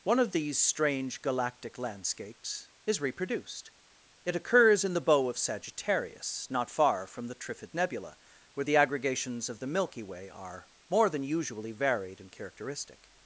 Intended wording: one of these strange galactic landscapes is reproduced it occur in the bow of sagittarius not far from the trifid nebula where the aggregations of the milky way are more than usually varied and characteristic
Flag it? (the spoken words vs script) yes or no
yes